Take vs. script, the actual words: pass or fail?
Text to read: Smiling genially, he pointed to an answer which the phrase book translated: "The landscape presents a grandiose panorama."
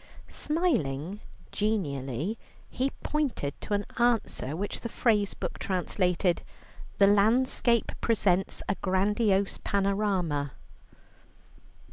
pass